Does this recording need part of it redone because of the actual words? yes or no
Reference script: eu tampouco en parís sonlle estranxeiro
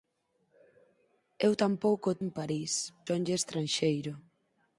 no